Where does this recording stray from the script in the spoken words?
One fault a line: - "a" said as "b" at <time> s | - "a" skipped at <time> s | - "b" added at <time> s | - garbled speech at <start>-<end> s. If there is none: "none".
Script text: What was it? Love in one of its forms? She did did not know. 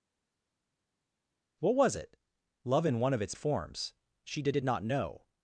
none